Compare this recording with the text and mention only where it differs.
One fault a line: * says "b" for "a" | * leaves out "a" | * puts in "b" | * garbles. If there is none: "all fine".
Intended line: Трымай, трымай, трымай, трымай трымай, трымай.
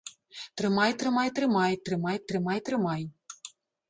all fine